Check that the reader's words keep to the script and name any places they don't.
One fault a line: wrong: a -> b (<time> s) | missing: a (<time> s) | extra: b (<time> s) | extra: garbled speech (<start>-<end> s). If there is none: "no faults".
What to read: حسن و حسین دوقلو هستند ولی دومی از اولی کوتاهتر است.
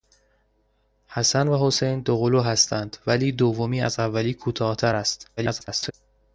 extra: garbled speech (5.4-5.9 s)